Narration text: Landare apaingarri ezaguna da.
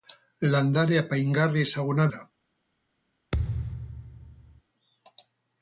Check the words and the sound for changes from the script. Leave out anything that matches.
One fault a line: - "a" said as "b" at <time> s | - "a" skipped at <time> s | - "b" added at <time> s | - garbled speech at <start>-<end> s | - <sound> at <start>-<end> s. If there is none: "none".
- thud at 3.3-4.6 s